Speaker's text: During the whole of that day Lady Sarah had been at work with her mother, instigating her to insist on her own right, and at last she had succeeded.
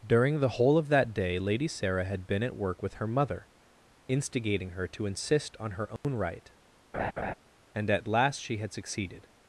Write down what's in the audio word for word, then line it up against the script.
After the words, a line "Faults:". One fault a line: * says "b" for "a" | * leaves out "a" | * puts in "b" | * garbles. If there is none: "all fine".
During the whole of that day Lady Sarah had been at work with her mother, instigating her to insist on her own right, and at last she had succeeded.
Faults:
all fine